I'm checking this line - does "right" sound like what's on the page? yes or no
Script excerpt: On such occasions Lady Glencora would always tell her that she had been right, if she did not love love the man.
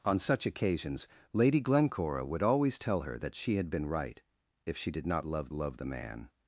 yes